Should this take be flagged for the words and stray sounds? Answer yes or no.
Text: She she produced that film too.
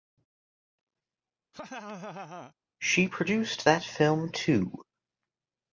yes